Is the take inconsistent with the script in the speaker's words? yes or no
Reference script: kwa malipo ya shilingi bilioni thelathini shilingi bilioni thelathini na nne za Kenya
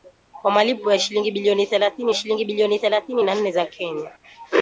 no